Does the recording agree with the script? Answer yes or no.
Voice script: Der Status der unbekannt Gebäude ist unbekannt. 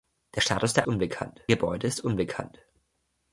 yes